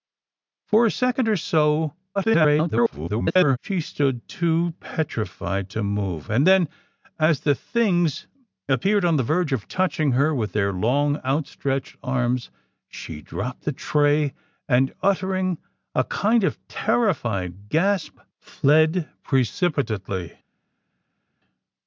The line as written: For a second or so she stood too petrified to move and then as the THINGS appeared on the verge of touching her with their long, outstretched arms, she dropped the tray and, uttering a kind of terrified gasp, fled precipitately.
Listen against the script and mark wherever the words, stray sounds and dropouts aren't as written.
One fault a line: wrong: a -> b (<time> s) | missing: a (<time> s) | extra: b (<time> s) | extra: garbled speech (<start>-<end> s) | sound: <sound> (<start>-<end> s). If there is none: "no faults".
extra: garbled speech (2.1-3.6 s)